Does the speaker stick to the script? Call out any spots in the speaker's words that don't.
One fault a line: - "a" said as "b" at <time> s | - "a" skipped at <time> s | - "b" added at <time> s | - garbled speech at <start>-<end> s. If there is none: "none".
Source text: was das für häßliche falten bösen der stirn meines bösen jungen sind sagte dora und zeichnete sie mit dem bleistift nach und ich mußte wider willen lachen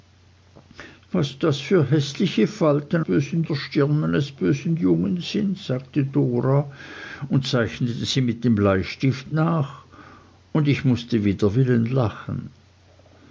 none